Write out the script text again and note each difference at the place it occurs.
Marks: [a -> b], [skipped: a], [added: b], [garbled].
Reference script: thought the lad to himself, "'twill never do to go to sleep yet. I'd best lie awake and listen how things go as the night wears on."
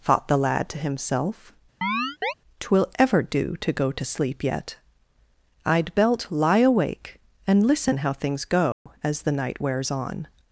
thought the lad to himself, "'twill [never -> ever] do to go to sleep yet. I'd [best -> belt] lie awake and listen how things go as the night wears on."